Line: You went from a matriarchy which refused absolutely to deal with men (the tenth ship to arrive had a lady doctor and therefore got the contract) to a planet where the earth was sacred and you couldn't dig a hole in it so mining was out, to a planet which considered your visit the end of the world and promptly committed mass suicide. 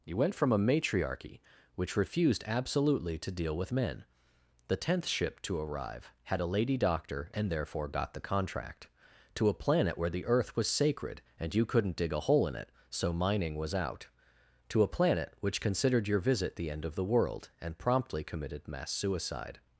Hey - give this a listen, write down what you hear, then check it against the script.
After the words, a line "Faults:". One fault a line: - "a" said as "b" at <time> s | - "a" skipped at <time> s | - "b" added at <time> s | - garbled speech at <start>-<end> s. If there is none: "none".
You went from a matriarchy which refused absolutely to deal with men (the tenth ship to arrive had a lady doctor and therefore got the contract) to a planet where the earth was sacred and you couldn't dig a hole in it so mining was out, to a planet which considered your visit the end of the world and promptly committed mass suicide.
Faults:
none